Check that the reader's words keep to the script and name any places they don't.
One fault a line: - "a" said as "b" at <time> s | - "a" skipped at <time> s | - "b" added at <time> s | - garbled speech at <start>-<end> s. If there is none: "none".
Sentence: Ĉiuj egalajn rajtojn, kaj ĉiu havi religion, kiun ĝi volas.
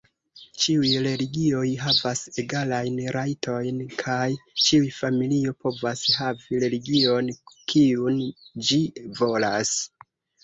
- "religioj havas" added at 1.1 s
- "familio povas" added at 5.0 s